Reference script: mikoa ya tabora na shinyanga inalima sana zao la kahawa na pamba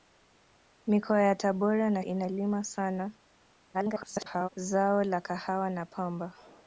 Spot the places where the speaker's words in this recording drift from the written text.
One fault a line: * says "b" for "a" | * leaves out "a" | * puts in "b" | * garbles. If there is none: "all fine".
* leaves out "shinyanga"
* garbles